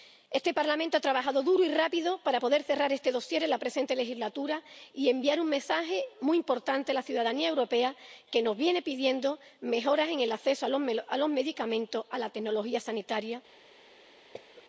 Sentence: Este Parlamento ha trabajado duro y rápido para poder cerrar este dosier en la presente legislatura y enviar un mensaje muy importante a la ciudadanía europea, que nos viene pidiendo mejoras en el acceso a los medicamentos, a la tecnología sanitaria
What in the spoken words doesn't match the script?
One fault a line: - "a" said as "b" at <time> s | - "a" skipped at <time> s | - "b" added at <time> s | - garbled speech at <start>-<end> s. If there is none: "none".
none